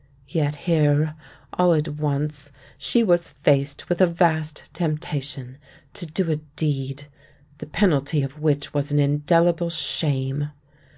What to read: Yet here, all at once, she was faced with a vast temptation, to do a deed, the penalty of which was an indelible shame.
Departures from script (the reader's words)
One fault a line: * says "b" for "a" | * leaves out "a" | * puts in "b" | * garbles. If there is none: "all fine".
all fine